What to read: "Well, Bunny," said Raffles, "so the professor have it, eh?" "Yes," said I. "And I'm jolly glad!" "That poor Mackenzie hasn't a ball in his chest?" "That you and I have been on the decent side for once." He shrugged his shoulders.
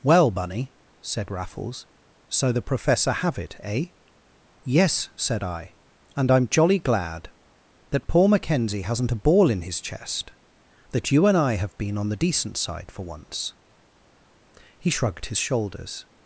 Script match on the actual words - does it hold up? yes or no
yes